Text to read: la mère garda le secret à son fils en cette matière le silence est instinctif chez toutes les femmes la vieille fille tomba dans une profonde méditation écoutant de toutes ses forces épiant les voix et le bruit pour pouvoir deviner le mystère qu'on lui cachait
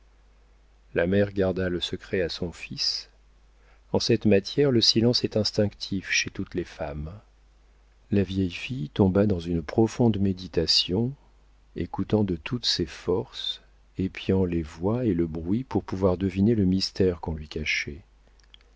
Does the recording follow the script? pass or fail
pass